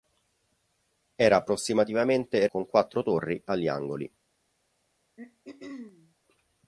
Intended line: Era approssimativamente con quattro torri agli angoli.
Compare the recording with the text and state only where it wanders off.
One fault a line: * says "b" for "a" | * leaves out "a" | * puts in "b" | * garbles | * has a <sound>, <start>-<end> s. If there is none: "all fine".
* has a throat clearing, 5.2-6.2 s